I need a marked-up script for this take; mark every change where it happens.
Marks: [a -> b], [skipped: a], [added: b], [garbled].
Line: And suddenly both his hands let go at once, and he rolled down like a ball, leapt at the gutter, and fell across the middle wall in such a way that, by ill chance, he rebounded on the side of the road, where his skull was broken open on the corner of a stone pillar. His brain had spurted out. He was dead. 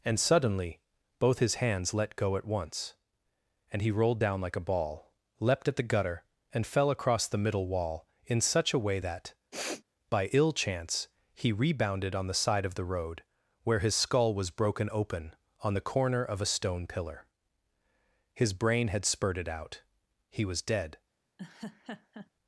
And suddenly both his hands let go at once, and he rolled down like a ball, leapt at the gutter, and fell across the middle wall in such a way that, by ill chance, he rebounded on the side of the road, where his skull was broken open on the corner of a stone pillar. His brain had spurted out. He was dead.